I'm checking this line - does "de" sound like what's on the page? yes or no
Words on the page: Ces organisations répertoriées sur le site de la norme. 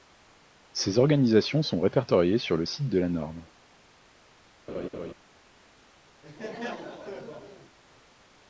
yes